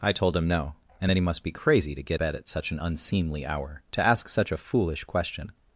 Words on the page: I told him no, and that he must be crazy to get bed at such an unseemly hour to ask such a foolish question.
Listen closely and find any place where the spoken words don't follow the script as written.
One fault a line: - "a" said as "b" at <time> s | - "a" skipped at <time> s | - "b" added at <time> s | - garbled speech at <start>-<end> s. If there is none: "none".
none